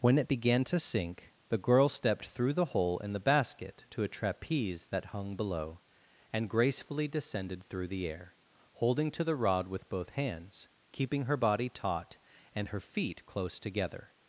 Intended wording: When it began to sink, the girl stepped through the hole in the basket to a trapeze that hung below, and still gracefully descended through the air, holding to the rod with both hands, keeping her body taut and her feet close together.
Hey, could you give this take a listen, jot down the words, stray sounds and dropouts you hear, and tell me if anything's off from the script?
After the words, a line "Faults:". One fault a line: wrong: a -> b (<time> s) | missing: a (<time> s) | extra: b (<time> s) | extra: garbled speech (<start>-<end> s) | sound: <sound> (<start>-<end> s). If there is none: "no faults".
When it began to sink, the girl stepped through the hole in the basket to a trapeze that hung below, and gracefully descended through the air, holding to the rod with both hands, keeping her body taut and her feet close together.
Faults:
missing: still (6.5 s)